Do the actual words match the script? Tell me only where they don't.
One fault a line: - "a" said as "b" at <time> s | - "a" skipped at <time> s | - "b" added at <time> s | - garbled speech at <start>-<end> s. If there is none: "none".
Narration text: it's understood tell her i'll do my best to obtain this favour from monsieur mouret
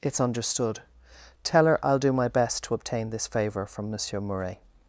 none